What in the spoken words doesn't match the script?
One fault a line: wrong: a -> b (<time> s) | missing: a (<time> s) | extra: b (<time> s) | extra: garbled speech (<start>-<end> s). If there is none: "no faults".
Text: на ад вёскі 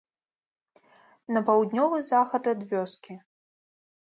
extra: паўднёвы захад (1.5 s)